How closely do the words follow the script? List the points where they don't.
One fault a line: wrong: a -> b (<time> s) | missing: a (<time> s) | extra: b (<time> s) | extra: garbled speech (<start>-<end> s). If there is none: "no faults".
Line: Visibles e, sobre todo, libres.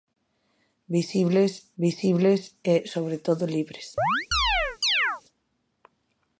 extra: visibles (1.8 s)